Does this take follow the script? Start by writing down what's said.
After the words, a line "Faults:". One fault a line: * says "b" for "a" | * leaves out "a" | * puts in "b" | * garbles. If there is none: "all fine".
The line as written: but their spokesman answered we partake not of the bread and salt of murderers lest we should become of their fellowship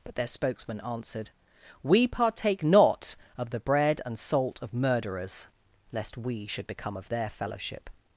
but their spokesman answered we partake not of the bread and salt of murderers lest we should become of their fellowship
Faults:
all fine